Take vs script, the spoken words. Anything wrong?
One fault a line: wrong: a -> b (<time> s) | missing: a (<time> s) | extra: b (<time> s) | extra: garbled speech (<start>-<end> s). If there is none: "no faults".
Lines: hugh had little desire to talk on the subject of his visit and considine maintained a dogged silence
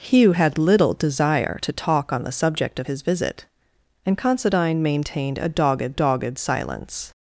extra: dogged (5.9 s)